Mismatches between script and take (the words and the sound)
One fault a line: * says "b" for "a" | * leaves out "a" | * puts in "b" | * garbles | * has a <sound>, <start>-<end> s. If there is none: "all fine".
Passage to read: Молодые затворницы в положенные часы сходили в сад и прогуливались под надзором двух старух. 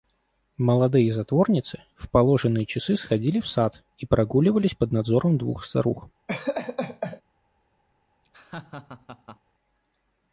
* has a laugh, 6.3-7.2 s
* has a laugh, 8.2-9.4 s